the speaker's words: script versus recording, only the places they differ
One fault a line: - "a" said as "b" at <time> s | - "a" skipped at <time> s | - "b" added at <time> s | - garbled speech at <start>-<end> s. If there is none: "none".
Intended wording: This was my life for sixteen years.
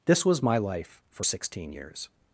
none